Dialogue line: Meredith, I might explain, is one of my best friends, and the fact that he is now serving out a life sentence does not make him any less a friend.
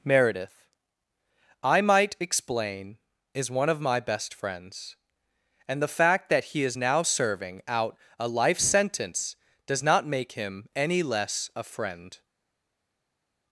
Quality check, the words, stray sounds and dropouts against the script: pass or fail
pass